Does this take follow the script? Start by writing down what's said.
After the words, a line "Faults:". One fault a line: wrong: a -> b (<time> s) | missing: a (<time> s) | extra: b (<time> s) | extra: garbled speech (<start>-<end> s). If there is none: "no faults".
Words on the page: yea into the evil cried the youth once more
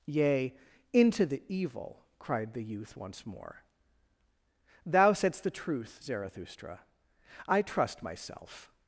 yea into the evil cried the youth once more thou saidst the truth zarathustra i trust myself
Faults:
extra: thou saidst the truth zarathustra i trust myself (4.8 s)